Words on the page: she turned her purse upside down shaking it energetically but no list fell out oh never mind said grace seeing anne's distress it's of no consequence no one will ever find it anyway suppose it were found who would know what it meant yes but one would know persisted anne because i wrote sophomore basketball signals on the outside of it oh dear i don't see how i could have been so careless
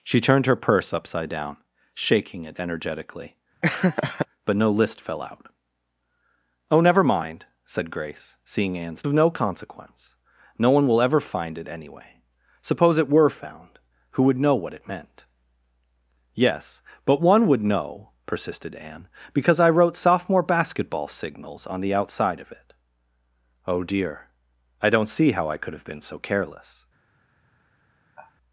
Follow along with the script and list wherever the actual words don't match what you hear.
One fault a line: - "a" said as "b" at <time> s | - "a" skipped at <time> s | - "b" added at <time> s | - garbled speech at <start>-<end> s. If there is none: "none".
- "distress it's" skipped at 9.0 s